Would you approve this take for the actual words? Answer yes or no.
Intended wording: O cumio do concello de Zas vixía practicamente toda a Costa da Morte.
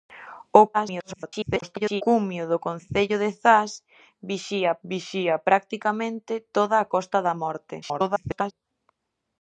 no